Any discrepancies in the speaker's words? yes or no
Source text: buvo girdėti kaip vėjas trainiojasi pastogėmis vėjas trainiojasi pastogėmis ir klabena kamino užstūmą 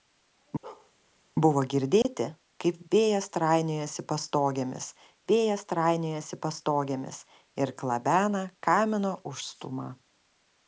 no